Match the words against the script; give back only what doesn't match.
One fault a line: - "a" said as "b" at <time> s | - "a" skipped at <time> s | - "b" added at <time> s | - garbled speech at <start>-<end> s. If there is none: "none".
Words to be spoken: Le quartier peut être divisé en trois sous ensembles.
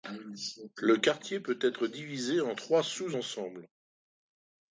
none